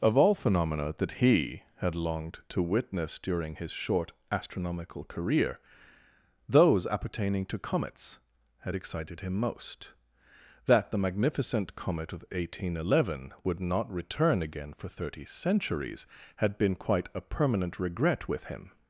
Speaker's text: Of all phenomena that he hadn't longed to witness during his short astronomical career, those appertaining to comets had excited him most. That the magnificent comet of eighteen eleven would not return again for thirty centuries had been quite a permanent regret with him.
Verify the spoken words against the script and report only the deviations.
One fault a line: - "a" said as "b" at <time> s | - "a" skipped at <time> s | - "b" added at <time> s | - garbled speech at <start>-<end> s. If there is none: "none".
- "hadn't" said as "had" at 1.8 s